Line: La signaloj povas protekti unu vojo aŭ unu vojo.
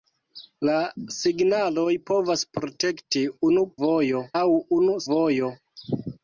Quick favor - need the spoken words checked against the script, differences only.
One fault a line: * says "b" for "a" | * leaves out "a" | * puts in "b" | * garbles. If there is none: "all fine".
all fine